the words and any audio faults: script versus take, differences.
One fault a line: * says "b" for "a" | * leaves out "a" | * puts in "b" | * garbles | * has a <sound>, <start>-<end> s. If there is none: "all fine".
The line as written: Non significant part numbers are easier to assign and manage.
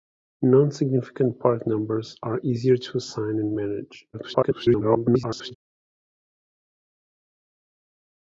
* garbles